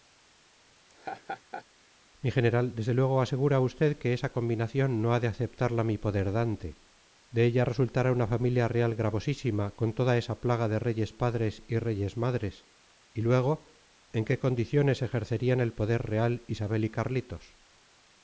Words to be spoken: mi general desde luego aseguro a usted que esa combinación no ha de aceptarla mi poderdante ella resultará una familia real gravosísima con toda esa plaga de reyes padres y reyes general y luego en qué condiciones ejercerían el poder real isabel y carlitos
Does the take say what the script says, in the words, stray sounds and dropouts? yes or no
no